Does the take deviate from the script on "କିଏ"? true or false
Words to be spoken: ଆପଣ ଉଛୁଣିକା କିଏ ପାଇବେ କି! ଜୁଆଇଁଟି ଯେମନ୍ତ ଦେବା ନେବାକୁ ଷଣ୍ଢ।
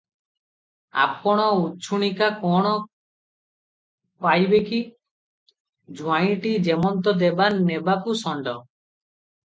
true